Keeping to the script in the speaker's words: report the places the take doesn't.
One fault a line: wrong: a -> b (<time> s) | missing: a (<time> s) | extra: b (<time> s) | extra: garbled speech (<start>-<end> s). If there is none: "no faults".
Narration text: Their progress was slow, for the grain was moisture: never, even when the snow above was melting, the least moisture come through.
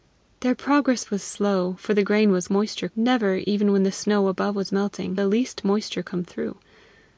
no faults